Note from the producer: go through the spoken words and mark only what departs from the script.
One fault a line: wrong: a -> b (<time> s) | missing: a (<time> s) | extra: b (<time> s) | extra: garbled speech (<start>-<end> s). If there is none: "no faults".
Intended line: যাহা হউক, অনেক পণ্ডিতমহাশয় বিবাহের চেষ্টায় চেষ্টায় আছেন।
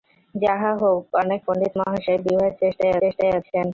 no faults